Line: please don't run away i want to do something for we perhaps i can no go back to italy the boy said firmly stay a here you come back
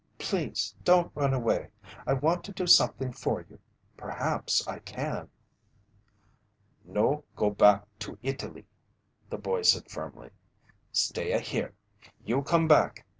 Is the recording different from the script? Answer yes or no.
yes